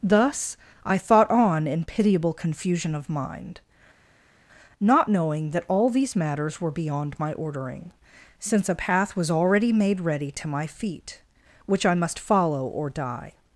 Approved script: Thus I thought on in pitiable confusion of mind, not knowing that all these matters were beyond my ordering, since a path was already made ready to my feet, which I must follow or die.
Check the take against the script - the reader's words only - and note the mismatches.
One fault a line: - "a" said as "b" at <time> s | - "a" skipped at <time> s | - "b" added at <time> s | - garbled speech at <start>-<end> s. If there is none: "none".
none